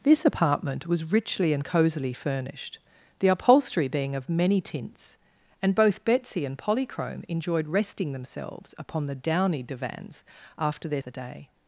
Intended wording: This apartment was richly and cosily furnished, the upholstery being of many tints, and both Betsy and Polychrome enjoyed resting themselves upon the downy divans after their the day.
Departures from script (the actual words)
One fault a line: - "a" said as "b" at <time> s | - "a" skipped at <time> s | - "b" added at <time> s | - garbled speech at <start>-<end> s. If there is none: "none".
none